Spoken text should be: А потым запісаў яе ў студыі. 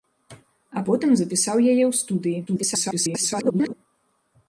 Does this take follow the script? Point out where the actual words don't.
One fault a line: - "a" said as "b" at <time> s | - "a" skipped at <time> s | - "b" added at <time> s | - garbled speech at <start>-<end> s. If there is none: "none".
- garbled speech at 2.5-3.7 s